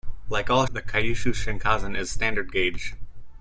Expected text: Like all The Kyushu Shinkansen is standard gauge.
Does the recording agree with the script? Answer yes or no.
yes